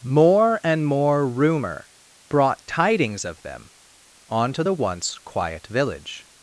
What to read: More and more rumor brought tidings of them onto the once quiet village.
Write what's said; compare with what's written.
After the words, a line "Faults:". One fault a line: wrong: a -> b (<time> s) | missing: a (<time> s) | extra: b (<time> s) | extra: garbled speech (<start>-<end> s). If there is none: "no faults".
More and more rumor brought tidings of them onto the once quiet village.
Faults:
no faults